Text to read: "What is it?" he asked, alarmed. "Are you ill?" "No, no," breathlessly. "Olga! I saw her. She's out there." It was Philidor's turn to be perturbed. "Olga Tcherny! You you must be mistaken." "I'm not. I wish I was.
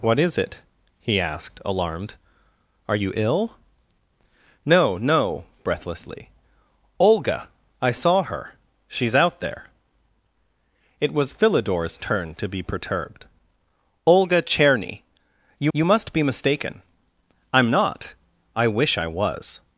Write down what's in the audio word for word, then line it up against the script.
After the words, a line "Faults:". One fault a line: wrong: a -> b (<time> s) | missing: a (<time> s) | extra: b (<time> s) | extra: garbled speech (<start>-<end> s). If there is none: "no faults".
"What is it?" he asked, alarmed. "Are you ill?" "No, no," breathlessly. "Olga! I saw her. She's out there." It was Philidor's turn to be perturbed. "Olga Tcherny! You you must be mistaken." "I'm not. I wish I was.
Faults:
no faults